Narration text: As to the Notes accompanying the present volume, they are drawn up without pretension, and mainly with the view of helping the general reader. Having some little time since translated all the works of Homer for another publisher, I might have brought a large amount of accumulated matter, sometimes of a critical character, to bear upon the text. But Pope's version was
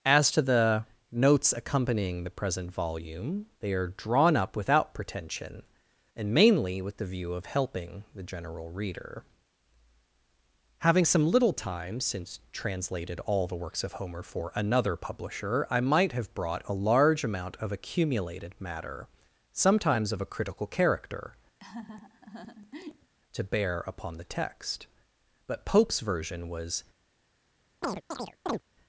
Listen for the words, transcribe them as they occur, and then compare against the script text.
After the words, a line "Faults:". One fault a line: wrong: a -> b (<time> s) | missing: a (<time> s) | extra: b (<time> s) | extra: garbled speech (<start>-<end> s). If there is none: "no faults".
As to the Notes accompanying the present volume, they are drawn up without pretension, and mainly with the view of helping the general reader. Having some little time since translated all the works of Homer for another publisher, I might have brought a large amount of accumulated matter, sometimes of a critical character, to bear upon the text. But Pope's version was
Faults:
no faults